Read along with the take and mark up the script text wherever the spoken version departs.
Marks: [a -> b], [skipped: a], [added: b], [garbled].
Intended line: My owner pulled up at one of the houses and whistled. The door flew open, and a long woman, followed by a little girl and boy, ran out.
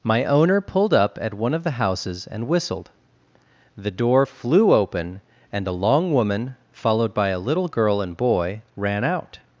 My owner pulled up at one of the houses and whistled. The door flew open, and a long woman, followed by a little girl and boy, ran out.